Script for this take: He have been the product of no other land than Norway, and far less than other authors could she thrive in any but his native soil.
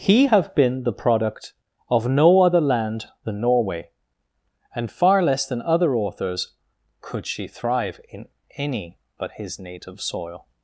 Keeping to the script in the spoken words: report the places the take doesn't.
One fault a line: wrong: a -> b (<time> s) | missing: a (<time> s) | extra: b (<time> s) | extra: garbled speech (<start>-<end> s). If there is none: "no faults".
no faults